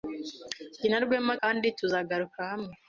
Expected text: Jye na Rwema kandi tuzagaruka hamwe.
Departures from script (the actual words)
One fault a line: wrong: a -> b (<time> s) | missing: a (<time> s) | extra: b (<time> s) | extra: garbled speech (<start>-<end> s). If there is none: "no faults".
no faults